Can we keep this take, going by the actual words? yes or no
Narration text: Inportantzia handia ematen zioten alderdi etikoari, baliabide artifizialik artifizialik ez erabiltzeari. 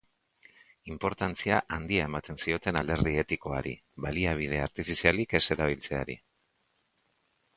no